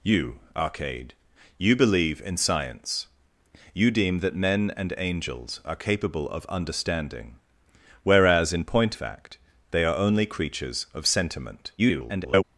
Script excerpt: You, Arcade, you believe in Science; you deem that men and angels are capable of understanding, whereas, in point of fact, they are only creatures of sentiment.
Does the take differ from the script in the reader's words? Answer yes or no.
yes